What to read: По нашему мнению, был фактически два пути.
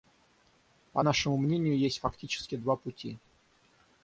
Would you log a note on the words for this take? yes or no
yes